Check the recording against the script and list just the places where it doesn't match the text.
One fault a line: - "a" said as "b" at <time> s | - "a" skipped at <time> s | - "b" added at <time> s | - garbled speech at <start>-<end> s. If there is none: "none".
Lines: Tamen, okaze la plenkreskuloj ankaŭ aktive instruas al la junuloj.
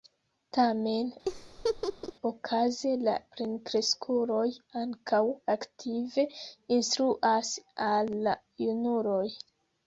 none